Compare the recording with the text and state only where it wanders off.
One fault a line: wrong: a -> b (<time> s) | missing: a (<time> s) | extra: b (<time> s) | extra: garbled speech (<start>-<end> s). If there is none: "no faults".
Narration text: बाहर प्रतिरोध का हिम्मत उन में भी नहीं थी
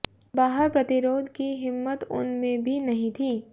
wrong: का -> की (1.4 s)